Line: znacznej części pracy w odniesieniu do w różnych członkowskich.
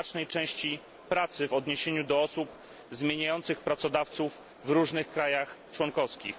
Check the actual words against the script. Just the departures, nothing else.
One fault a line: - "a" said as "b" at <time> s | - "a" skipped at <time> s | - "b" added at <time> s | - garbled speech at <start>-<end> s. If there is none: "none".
- "osób zmieniających pracodawców" added at 2.2 s
- "państwach" added at 5.1 s